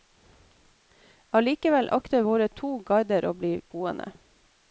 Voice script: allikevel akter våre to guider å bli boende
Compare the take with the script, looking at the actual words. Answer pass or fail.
pass